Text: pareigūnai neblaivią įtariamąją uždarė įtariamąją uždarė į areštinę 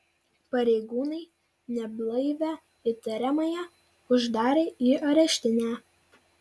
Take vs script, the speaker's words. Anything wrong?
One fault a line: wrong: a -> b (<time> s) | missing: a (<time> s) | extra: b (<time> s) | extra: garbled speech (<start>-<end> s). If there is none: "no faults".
missing: įtariamąją uždarė (4.7 s)